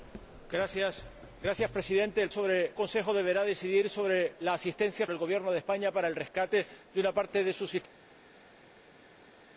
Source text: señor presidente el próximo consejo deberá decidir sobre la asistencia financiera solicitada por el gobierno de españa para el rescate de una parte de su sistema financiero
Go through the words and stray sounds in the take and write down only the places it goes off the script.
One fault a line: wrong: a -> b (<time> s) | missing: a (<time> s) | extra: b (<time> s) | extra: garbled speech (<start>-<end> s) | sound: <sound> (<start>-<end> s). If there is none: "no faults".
wrong: próximo -> sobre (2.3 s)
missing: financiera solicitada por (5.1 s)